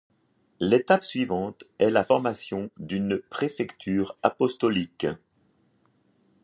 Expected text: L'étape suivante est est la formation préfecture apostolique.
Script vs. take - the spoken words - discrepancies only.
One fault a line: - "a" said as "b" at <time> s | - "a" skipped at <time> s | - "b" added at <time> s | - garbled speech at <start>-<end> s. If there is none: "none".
- "est" skipped at 1.9 s
- "d'une" added at 2.8 s